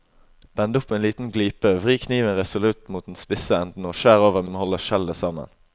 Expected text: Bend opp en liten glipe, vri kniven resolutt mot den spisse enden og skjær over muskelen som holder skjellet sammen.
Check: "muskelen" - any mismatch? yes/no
yes